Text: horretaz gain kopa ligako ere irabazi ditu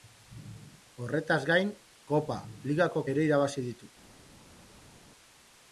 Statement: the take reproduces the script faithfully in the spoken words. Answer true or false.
true